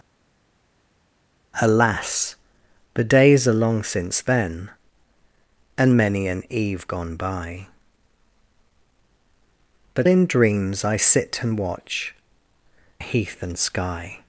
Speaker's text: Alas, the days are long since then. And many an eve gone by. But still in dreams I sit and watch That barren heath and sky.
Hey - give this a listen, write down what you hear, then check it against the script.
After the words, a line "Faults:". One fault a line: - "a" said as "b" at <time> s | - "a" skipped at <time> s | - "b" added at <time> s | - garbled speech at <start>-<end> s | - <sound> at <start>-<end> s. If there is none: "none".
Alas, the days are long since then. And many an eve gone by. But in dreams I sit and watch Heath and sky.
Faults:
- "still" skipped at 10.1 s
- "That barren" skipped at 12.1 s